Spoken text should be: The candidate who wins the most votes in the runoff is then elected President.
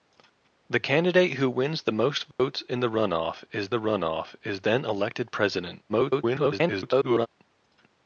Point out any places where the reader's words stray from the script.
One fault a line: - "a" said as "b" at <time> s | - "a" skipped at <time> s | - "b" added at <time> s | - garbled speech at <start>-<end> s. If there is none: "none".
- "the runoff is" added at 3.7 s
- garbled speech at 5.9-7.3 s